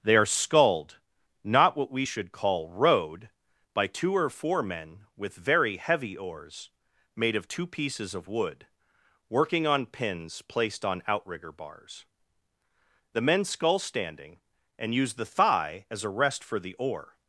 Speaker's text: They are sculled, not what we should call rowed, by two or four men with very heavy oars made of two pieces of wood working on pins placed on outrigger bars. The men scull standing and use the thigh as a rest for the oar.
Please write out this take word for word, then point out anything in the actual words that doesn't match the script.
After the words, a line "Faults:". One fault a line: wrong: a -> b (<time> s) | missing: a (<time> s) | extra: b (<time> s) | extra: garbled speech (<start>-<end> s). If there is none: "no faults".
They are sculled, not what we should call rowed, by two or four men with very heavy oars made of two pieces of wood working on pins placed on outrigger bars. The men scull standing and use the thigh as a rest for the oar.
Faults:
no faults